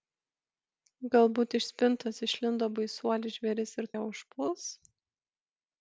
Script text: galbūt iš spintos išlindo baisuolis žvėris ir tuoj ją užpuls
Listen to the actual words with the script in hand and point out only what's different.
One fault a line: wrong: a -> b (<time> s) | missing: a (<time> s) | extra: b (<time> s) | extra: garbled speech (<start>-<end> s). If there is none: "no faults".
missing: tuoj (3.9 s)